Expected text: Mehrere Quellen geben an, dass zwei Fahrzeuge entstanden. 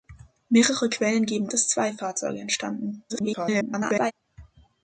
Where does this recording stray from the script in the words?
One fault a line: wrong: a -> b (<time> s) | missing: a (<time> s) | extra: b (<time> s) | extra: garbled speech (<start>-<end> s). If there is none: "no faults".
missing: an (1.5 s)
extra: garbled speech (3.1-4.1 s)